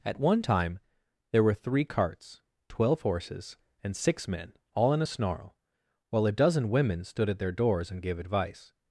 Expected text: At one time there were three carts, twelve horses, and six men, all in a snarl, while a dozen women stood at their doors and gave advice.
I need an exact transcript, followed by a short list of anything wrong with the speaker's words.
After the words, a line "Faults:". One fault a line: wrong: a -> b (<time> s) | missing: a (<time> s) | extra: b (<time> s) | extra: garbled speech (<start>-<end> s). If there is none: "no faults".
At one time there were three carts, twelve horses, and six men, all in a snarl, while a dozen women stood at their doors and gave advice.
Faults:
no faults